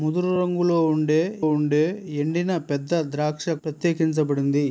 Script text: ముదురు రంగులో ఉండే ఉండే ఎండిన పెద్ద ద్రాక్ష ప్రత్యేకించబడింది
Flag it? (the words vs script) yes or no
no